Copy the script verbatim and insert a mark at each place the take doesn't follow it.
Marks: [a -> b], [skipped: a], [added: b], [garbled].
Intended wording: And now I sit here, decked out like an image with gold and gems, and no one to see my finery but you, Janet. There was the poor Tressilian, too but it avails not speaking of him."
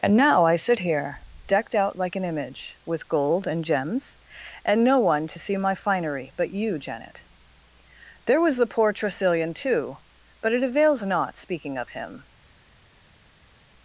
And now I sit here, decked out like an image with gold and gems, and no one to see my finery but you, Janet. There was the poor Tressilian, too but it avails not speaking of him."